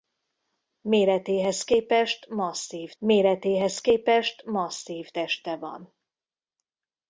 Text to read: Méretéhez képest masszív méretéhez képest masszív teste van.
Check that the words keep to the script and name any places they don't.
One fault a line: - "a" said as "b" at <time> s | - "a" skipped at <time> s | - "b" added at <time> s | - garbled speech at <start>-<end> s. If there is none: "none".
none